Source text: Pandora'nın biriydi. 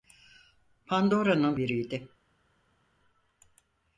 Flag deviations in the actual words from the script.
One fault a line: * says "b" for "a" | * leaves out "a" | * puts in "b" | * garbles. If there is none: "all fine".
all fine